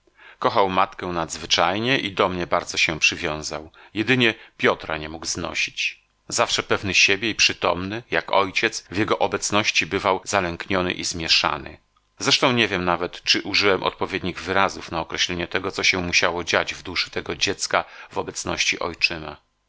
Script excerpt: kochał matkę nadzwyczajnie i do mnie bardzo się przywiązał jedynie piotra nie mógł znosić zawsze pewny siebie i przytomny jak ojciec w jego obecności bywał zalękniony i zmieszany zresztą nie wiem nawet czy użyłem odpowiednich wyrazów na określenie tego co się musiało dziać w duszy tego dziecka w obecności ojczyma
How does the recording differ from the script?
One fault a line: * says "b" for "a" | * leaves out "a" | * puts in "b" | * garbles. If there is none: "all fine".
all fine